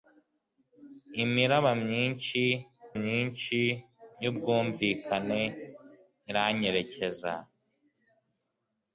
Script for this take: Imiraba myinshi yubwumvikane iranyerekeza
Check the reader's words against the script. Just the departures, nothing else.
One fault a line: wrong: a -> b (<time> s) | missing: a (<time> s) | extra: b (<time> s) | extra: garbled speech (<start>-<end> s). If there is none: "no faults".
extra: myinshi (3.0 s)